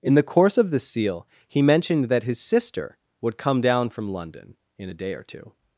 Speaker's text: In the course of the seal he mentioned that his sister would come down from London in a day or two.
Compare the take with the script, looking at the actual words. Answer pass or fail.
pass